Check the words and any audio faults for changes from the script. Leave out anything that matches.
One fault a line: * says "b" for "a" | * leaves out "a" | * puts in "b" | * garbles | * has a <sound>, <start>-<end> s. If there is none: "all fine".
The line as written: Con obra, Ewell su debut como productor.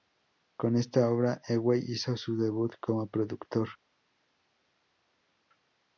* puts in "esta"
* puts in "hizo"